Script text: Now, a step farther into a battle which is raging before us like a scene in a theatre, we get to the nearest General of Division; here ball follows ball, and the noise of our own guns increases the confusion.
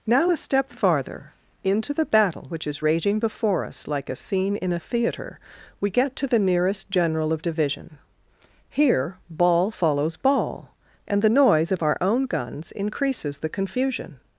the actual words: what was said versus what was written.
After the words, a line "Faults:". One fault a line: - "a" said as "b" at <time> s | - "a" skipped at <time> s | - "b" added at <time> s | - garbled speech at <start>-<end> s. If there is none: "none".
Now, a step farther into the battle which is raging before us like a scene in a theatre, we get to the nearest General of Division; here ball follows ball, and the noise of our own guns increases the confusion.
Faults:
- "a" said as "the" at 1.9 s